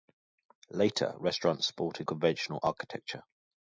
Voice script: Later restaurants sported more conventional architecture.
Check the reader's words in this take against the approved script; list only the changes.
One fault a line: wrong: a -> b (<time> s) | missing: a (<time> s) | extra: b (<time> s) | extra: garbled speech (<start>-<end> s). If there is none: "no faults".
missing: more (2.1 s)